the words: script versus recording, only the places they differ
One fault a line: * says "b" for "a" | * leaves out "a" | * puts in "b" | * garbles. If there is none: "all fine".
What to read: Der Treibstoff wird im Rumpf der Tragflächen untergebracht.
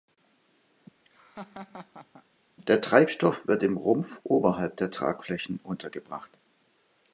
* puts in "oberhalb"